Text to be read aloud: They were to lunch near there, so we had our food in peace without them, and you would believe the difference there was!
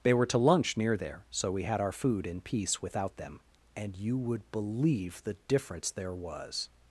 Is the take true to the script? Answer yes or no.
yes